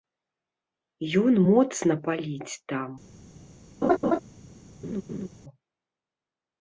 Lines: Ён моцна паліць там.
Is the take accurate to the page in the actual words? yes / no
yes